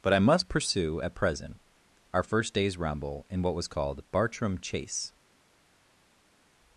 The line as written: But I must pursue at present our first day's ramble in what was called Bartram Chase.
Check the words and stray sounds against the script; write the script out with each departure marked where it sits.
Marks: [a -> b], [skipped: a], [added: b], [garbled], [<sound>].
But I must pursue at present our first day's ramble in what was called Bartram Chase.